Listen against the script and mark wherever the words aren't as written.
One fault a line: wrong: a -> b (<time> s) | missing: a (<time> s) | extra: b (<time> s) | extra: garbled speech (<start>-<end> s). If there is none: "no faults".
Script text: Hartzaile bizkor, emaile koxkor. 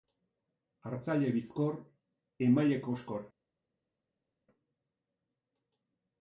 no faults